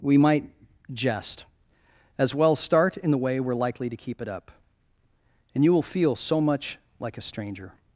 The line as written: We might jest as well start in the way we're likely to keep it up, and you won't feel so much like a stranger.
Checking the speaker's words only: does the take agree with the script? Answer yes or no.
no